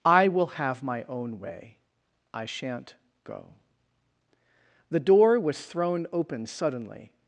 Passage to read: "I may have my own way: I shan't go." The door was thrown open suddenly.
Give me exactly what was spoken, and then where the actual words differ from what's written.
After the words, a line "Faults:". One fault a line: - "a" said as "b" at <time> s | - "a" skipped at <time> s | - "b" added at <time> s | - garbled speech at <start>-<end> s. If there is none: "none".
"I will have my own way: I shan't go." The door was thrown open suddenly.
Faults:
- "may" said as "will" at 0.3 s